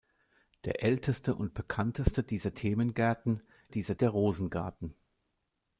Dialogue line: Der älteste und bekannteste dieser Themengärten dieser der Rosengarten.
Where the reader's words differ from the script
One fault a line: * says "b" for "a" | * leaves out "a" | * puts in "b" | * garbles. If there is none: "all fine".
all fine